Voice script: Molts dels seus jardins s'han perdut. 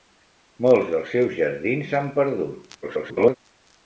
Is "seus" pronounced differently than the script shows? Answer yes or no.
no